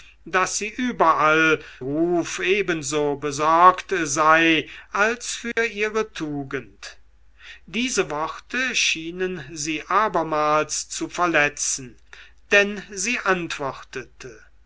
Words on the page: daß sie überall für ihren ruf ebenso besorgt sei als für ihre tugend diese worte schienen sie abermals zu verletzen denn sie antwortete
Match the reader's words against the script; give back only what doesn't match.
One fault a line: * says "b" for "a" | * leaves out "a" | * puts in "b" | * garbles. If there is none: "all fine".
* leaves out "für ihren"